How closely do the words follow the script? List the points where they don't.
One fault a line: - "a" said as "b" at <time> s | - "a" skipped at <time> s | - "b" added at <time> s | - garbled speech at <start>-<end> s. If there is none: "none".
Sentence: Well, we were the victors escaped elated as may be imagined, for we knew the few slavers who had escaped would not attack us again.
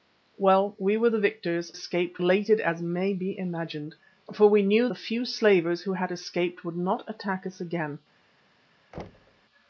none